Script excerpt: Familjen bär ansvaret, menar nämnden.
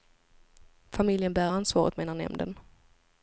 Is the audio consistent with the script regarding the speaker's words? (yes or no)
yes